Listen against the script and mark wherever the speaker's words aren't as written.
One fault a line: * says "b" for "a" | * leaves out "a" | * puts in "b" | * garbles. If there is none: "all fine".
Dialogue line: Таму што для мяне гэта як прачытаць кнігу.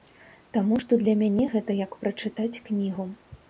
all fine